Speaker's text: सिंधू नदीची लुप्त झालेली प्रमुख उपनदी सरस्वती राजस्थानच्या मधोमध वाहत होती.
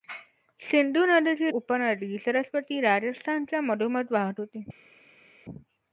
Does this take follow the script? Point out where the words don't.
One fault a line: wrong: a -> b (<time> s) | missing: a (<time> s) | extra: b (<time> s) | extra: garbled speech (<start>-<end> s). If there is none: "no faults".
missing: लुप्त झालेली प्रमुख (1.5 s)